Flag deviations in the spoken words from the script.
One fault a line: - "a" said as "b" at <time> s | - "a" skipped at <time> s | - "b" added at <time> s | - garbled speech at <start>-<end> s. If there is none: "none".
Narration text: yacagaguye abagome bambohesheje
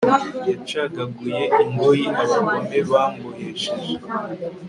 - "ingoyi" added at 1.6 s